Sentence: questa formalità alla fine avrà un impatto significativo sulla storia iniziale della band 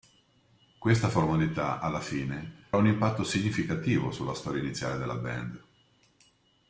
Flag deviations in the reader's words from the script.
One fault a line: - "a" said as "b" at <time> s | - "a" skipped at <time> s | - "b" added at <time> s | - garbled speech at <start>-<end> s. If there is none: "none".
- "avrà" skipped at 2.7 s